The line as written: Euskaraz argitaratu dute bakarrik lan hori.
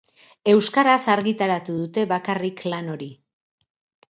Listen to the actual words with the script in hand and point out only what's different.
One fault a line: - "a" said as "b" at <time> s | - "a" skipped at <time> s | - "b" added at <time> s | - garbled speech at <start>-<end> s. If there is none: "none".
none